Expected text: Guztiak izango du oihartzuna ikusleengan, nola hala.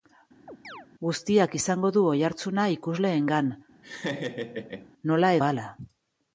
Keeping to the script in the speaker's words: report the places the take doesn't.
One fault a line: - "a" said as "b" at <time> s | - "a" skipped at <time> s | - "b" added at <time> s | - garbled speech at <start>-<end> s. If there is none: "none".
none